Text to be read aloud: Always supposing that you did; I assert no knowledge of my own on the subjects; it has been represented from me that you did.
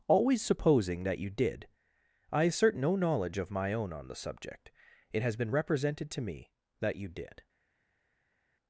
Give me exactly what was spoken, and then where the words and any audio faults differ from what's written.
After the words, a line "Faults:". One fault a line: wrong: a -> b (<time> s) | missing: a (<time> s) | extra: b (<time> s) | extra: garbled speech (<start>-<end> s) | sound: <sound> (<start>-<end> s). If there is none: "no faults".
Always supposing that you did; I assert no knowledge of my own on the subject; it has been represented to me that you did.
Faults:
wrong: subjects -> subject (4.2 s)
wrong: from -> to (6.1 s)